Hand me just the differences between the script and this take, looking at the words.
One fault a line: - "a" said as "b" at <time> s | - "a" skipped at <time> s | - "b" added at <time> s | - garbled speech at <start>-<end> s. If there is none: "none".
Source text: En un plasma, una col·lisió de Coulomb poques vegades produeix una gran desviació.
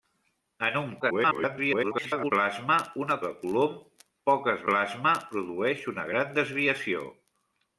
- garbled speech at 1.0-2.3 s
- "col·lisió" skipped at 3.2 s
- "vegades" said as "plasma" at 4.7 s